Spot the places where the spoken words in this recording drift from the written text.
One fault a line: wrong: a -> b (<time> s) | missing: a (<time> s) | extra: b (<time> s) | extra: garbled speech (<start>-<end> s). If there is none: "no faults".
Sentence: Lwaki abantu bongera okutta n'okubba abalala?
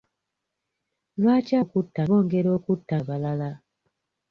wrong: abantu -> okutta (1.6 s)
missing: n'okubba (2.9 s)